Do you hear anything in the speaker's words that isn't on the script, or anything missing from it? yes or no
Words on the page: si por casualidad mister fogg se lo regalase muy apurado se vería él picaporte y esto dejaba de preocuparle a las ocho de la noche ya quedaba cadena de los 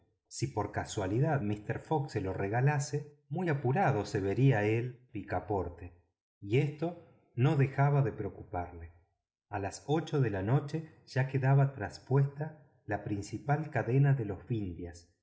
yes